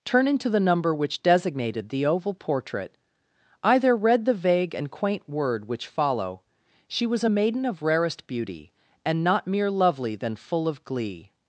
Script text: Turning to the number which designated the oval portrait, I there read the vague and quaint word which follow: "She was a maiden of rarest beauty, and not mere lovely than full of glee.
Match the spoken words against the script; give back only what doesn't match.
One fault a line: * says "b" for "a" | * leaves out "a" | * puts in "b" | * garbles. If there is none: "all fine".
all fine